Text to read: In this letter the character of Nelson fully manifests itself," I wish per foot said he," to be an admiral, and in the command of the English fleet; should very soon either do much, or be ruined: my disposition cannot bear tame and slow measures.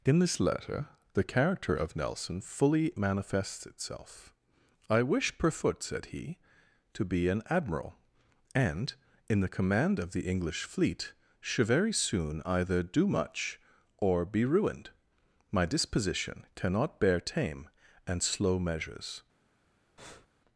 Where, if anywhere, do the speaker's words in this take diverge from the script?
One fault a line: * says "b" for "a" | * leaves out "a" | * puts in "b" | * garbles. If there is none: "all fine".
all fine